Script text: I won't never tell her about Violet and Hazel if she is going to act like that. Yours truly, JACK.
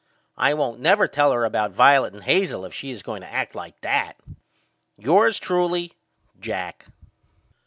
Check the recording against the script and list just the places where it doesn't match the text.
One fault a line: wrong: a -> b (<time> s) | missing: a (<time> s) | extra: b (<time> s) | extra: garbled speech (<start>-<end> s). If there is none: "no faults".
no faults